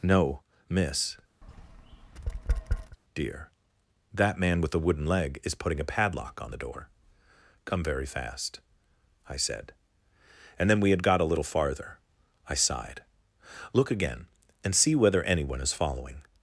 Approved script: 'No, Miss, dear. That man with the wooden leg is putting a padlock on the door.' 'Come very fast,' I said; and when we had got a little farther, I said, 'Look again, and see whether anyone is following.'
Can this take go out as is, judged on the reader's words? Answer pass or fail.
fail